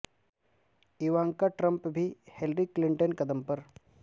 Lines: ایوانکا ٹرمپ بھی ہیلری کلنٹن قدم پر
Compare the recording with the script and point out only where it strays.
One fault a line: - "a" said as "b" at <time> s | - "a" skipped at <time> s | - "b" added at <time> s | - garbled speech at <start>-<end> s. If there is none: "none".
none